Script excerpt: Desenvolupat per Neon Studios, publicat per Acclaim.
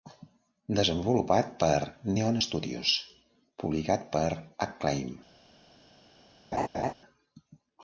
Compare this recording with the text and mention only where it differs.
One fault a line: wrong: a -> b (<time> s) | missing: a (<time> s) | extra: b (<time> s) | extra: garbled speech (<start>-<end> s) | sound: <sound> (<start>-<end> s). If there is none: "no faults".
sound: laugh (6.5-6.9 s)